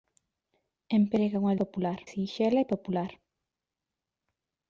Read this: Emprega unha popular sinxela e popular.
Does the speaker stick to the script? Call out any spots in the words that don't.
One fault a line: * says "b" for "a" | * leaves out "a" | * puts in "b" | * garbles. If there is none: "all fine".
all fine